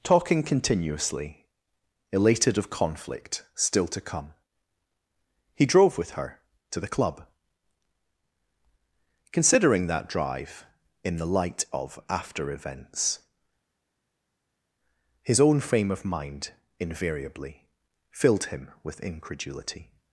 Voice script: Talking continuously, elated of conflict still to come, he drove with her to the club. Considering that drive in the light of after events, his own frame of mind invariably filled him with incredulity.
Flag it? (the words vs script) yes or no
no